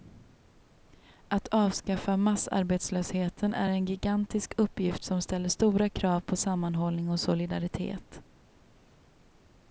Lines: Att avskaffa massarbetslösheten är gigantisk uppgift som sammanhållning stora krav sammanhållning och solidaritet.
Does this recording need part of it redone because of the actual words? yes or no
yes